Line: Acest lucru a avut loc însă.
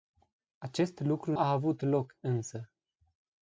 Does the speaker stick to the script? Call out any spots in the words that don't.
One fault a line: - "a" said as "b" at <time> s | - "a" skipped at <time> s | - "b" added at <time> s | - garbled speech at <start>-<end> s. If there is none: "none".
none